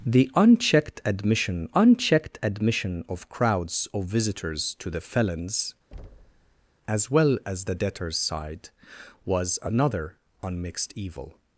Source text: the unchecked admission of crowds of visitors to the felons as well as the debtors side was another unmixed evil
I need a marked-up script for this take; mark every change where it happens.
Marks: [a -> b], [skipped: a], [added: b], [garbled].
the unchecked admission [added: unchecked admission] of crowds of visitors to the felons as well as the debtors side was another unmixed evil